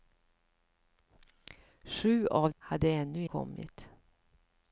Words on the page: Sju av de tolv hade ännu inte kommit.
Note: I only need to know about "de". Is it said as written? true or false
false